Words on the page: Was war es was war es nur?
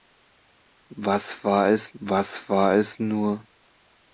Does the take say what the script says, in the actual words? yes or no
yes